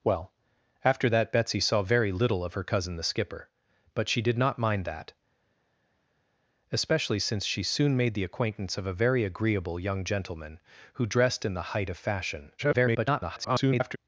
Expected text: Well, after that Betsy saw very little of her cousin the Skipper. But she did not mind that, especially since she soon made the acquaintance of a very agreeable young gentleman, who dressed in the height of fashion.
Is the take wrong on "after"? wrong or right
right